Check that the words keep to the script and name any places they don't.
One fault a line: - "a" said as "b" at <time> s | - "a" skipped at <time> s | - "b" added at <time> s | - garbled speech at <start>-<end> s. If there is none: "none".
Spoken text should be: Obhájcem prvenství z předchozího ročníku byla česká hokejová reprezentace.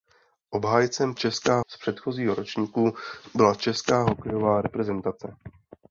- "prvenství" said as "česká" at 1.1 s